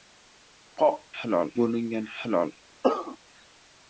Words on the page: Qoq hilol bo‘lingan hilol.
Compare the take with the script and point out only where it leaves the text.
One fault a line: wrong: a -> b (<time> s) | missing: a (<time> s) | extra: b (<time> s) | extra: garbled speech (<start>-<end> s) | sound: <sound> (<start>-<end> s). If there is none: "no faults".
sound: cough (2.8-3.2 s)